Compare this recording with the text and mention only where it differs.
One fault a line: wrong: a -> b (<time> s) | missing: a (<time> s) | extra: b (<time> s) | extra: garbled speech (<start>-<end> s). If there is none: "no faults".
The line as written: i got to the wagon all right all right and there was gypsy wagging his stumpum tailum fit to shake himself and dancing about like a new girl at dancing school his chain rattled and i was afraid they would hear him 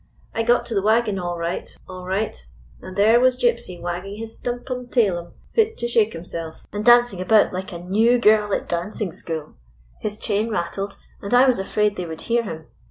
no faults